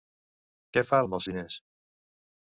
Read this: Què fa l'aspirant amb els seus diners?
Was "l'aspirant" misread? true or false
true